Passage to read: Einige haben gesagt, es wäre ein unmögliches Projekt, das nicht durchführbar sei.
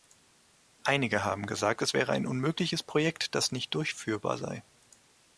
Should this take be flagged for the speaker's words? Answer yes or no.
no